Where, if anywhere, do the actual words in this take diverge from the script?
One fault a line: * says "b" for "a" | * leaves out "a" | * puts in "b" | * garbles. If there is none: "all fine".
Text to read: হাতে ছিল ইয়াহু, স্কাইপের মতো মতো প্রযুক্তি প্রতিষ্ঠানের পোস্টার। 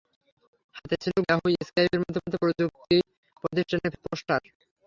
all fine